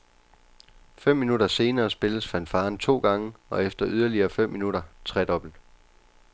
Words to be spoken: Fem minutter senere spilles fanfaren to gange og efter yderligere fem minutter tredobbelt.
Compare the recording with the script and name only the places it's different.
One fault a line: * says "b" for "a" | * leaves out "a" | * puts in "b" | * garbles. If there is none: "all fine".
all fine